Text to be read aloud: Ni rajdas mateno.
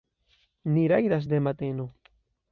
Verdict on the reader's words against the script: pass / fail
fail